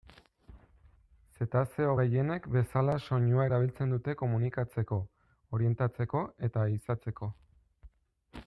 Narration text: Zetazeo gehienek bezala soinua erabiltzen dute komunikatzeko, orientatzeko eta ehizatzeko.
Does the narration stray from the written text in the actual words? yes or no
no